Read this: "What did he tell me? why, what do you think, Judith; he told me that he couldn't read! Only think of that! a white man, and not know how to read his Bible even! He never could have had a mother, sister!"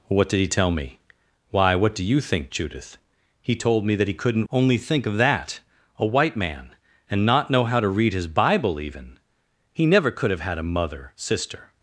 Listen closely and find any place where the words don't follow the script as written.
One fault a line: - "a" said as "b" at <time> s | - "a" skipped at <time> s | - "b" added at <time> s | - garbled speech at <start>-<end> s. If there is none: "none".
- "read" skipped at 4.5 s